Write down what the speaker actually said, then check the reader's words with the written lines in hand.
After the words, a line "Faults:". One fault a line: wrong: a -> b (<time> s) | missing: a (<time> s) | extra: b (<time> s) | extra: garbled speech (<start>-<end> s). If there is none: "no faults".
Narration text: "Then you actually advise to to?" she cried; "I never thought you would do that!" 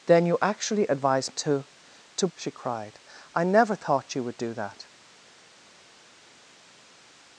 "Then you actually advise to to?" she cried; "I never thought you would do that!"
Faults:
no faults